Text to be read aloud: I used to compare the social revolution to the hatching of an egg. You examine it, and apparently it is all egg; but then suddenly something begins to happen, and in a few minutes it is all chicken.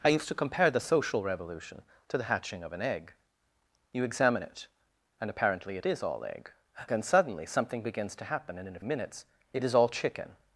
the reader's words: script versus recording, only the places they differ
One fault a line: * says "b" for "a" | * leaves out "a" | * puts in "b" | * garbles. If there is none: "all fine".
* leaves out "but"
* leaves out "few"